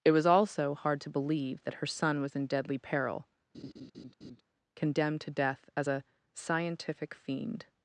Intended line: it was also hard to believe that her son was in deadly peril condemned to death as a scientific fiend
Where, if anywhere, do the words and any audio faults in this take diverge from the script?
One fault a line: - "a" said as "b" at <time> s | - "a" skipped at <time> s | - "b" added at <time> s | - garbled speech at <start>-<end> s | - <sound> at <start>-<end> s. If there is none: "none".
- laugh at 3.5-4.4 s